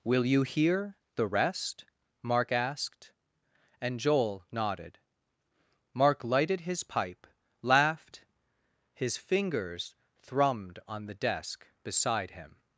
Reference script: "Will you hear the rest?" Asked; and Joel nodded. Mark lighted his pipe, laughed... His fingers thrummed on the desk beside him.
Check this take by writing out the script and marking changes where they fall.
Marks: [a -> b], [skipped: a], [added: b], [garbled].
"Will you hear the rest?" [added: Mark] Asked; and Joel nodded. Mark lighted his pipe, laughed... His fingers thrummed on the desk beside him.